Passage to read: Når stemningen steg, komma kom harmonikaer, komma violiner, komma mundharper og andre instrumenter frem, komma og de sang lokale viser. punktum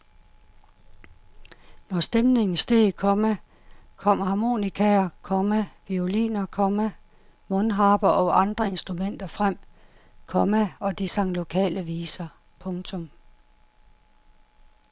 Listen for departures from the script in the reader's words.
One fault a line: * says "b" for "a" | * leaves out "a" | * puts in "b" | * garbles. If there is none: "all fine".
all fine